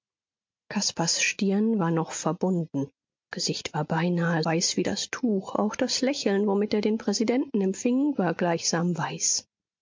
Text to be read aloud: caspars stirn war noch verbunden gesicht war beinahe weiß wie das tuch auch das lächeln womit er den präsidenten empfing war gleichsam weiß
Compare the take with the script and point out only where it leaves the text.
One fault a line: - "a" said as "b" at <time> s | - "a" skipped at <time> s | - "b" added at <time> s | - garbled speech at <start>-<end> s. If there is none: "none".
none